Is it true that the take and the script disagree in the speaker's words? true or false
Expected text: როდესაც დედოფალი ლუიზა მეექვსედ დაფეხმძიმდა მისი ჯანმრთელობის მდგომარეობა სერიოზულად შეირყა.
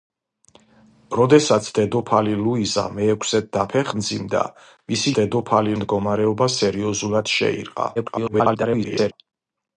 true